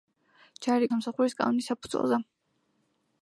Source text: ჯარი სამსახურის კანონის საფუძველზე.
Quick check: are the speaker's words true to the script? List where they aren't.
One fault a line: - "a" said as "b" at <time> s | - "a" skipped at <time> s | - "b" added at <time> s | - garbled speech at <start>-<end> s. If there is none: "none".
none